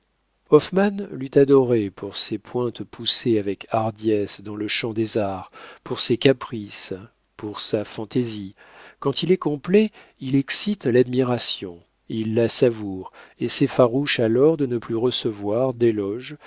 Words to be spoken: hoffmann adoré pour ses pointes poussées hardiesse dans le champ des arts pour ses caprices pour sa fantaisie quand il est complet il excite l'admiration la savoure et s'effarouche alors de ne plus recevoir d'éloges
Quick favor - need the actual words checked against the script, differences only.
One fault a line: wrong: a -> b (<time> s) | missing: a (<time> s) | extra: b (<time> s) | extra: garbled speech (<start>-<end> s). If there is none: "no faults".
extra: l'eût (1.1 s)
extra: avec (3.4 s)
extra: il (12.1 s)